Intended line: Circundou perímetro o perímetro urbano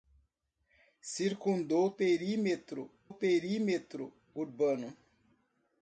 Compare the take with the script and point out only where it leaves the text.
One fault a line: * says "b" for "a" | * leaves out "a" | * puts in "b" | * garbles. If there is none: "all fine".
all fine